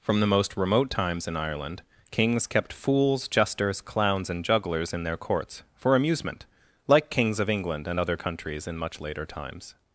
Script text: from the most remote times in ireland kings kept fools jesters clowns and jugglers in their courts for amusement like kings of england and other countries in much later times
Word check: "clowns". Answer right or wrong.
right